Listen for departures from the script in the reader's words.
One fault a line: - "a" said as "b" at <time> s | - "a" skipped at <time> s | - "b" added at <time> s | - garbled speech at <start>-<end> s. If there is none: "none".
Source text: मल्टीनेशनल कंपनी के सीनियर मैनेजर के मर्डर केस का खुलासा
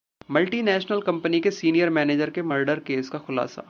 none